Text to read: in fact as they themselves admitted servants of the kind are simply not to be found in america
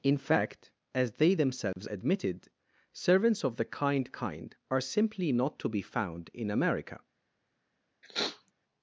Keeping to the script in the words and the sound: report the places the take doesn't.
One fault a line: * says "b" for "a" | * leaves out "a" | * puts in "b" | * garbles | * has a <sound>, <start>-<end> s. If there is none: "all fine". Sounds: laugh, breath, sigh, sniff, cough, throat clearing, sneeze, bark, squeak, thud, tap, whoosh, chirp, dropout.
* has a dropout, 1.7-1.8 s
* puts in "kind"
* has a sniff, 8.0-8.5 s